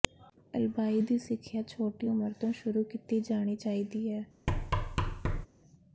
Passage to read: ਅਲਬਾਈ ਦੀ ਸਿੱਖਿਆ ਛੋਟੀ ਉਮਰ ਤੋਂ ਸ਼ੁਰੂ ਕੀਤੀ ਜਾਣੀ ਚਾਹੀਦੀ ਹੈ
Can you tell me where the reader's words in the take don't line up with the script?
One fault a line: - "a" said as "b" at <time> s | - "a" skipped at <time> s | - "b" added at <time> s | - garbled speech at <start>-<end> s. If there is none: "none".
none